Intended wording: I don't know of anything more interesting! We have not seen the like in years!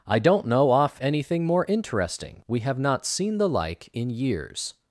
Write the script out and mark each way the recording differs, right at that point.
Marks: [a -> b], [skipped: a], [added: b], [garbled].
I don't know [of -> off] anything more interesting! We have not seen the like in years!